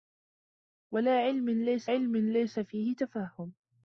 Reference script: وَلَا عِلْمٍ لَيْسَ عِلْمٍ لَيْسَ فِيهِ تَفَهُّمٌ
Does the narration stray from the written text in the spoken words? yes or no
no